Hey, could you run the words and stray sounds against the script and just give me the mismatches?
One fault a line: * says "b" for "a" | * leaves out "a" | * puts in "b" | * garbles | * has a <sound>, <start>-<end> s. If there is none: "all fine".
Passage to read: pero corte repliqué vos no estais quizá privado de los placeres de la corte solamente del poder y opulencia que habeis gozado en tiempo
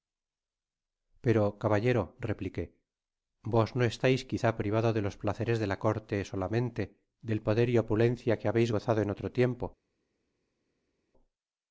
* says "caballero" for "corte"
* puts in "otro"